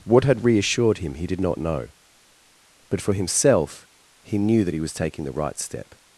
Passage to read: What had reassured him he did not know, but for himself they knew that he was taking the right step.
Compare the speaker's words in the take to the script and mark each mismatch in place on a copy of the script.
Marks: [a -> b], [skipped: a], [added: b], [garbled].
What had reassured him he did not know, but for himself [they -> he] knew that he was taking the right step.